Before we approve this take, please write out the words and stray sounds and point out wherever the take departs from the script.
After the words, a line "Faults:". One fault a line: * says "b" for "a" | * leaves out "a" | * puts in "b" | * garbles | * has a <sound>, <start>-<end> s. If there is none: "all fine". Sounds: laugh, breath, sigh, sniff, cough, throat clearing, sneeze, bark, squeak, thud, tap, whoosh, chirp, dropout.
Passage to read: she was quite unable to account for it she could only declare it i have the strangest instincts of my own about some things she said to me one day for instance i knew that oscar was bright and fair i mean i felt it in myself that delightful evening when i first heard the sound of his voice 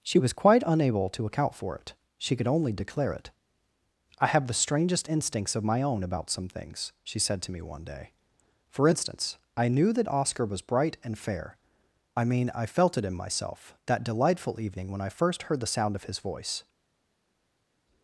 she was quite unable to account for it she could only declare it i have the strangest instincts of my own about some things she said to me one day for instance i knew that oscar was bright and fair i mean i felt it in myself that delightful evening when i first heard the sound of his voice
Faults:
all fine